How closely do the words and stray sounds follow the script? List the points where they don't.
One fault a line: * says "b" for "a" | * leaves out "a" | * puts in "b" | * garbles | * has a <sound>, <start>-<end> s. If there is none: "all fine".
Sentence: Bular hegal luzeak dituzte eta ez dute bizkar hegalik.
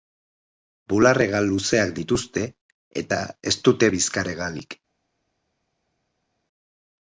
all fine